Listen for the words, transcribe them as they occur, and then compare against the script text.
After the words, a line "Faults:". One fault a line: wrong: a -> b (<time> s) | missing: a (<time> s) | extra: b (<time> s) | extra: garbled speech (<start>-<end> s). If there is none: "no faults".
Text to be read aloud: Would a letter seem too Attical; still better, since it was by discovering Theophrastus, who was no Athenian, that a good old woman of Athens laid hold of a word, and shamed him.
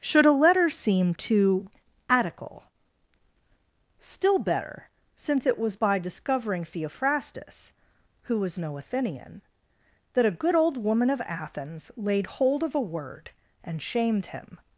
Should a letter seem too Attical; still better, since it was by discovering Theophrastus, who was no Athenian, that a good old woman of Athens laid hold of a word, and shamed him.
Faults:
wrong: Would -> Should (0.0 s)